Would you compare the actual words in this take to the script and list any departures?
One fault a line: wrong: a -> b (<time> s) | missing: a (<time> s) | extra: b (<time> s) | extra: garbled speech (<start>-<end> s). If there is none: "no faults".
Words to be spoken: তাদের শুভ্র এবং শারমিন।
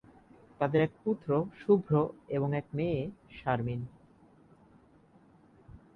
extra: এক পুত্র (0.8 s)
extra: এক মেয়ে (2.6 s)